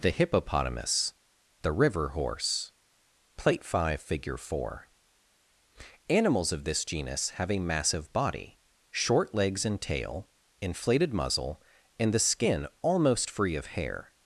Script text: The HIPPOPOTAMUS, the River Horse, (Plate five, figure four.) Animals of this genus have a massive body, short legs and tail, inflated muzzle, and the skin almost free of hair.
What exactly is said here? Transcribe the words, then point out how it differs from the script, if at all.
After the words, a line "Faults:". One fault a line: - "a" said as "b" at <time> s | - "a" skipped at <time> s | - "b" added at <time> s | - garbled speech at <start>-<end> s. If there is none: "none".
The HIPPOPOTAMUS, the River Horse, (Plate five, figure four.) Animals of this genus have a massive body, short legs and tail, inflated muzzle, and the skin almost free of hair.
Faults:
none